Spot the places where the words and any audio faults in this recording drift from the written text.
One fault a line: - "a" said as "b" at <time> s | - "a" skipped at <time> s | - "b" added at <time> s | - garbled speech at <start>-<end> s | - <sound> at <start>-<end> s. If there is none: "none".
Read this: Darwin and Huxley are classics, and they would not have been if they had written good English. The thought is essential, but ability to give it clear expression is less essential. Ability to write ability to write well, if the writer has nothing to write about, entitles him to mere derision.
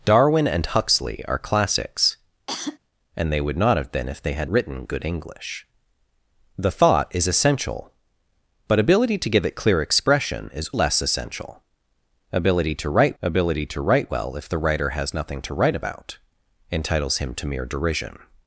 - cough at 2.5-2.8 s